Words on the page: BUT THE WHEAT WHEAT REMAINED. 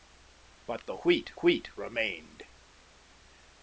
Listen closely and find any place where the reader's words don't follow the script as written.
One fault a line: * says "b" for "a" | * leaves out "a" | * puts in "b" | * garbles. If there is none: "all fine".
all fine